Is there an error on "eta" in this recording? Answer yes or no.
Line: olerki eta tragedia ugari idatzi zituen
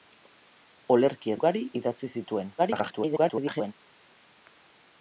yes